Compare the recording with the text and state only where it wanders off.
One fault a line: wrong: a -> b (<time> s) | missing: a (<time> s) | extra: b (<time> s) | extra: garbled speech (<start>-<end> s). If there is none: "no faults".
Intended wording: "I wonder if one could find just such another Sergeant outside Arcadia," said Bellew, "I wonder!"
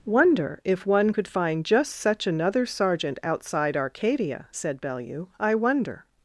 missing: I (0.1 s)